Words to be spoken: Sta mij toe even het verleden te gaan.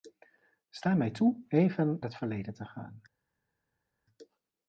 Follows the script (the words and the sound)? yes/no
yes